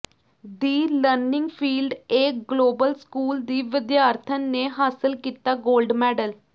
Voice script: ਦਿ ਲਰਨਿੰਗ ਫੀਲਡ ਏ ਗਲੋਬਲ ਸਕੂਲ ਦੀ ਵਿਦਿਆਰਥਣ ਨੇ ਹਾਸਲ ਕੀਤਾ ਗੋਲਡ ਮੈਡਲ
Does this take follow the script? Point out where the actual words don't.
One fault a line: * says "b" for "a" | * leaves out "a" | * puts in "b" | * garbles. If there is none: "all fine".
all fine